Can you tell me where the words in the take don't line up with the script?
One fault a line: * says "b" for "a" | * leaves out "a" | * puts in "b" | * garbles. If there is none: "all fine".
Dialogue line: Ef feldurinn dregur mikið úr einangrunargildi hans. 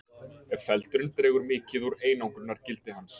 all fine